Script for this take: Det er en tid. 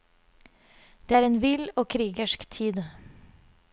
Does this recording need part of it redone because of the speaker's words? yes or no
yes